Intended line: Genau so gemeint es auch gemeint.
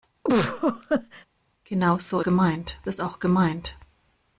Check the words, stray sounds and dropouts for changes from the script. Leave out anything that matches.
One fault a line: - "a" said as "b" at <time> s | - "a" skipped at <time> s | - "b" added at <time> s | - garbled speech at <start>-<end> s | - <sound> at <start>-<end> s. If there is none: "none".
- laugh at 0.2-1.2 s